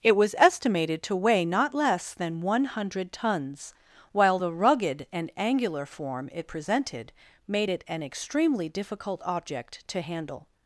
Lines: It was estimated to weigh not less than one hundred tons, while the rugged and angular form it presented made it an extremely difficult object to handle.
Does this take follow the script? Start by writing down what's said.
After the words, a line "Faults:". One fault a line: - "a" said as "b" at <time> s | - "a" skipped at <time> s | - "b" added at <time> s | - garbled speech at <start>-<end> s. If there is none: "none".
It was estimated to weigh not less than one hundred tons, while the rugged and angular form it presented made it an extremely difficult object to handle.
Faults:
none